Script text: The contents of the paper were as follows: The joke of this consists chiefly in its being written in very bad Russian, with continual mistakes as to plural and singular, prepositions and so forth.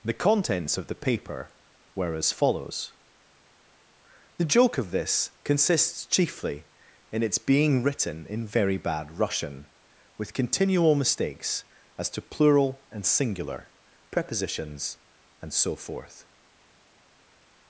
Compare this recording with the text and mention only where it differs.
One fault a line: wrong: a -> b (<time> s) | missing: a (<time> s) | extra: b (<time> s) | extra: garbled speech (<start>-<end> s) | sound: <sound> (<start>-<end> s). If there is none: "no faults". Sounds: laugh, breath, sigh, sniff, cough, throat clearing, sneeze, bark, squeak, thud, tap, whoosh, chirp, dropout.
no faults